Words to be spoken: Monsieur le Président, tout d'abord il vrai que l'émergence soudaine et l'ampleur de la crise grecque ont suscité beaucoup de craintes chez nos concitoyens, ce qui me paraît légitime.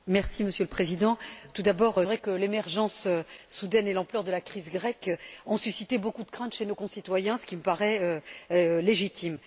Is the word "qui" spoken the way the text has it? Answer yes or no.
yes